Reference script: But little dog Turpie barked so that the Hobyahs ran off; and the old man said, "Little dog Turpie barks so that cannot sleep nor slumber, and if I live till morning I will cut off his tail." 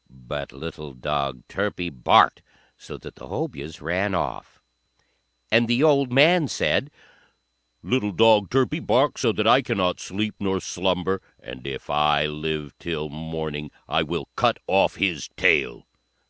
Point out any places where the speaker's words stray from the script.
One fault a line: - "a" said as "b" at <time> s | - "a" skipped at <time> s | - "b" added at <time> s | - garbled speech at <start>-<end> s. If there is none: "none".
- "I" added at 9.4 s